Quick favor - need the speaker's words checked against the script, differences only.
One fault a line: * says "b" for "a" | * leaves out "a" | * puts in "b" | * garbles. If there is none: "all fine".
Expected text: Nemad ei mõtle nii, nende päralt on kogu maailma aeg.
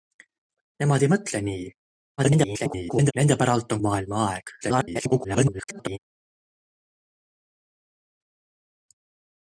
* garbles
* leaves out "kogu"
* garbles